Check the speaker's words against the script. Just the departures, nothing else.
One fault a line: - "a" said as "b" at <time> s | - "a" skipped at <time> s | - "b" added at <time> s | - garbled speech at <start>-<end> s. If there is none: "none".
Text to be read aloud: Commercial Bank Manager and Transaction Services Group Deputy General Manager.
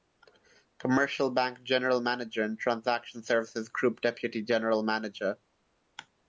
- "General" added at 1.6 s